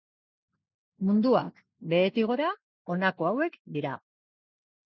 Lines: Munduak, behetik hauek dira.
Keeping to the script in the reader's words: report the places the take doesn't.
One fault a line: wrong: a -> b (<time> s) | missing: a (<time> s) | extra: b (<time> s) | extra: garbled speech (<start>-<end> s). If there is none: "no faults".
extra: gora honako (2.3 s)